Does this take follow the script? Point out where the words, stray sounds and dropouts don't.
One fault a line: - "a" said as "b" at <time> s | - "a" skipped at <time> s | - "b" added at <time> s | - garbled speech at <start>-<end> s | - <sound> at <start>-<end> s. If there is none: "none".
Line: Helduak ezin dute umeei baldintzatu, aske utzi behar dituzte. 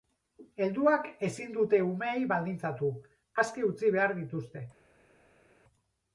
none